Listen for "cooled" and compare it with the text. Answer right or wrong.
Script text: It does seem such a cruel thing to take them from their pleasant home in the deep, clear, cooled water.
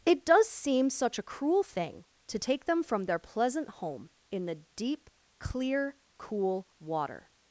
wrong